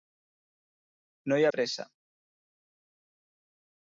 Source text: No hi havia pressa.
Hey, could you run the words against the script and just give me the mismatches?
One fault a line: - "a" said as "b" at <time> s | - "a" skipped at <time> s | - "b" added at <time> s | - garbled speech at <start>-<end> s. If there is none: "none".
- "havia" skipped at 1.4 s